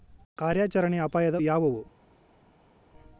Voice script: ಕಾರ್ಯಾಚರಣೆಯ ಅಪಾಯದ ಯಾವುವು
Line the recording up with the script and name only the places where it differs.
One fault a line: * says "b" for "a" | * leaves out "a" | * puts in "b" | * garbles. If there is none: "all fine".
all fine